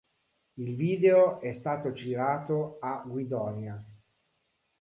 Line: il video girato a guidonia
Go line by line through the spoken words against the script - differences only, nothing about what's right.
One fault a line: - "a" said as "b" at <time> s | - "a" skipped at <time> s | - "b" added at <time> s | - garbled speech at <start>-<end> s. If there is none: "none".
- "è stato" added at 1.4 s